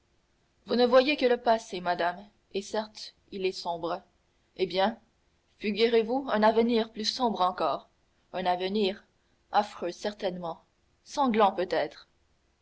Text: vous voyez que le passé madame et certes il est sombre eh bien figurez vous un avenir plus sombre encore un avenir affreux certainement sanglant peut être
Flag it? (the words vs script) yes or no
yes